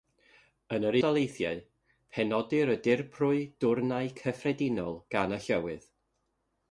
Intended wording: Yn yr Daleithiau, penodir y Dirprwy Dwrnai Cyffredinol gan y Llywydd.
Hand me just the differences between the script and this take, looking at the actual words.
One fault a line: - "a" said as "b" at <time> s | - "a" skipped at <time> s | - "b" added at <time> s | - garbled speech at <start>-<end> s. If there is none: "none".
none